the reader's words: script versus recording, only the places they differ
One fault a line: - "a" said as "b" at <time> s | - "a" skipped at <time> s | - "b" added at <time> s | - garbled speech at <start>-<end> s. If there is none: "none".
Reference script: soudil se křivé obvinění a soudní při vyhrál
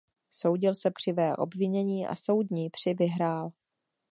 none